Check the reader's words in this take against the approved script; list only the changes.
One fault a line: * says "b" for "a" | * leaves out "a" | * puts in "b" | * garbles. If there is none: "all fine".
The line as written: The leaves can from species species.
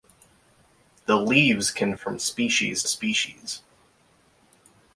all fine